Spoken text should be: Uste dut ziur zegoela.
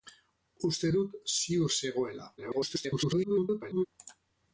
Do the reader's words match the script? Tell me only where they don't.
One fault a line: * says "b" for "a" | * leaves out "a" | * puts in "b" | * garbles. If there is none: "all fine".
* garbles